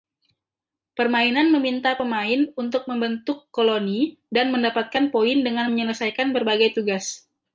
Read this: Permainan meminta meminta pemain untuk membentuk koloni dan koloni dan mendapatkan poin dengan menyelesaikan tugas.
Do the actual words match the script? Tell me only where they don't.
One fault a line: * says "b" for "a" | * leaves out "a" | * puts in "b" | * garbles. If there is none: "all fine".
* leaves out "meminta"
* leaves out "koloni dan"
* puts in "berbagai"